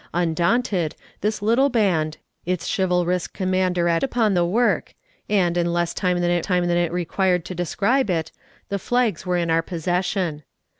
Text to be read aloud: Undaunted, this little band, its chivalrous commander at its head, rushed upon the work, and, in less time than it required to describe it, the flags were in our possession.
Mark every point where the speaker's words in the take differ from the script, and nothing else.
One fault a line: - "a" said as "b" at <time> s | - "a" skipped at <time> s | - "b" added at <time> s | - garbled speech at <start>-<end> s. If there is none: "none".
- "its head rushed" skipped at 4.0 s
- "time than it" added at 6.4 s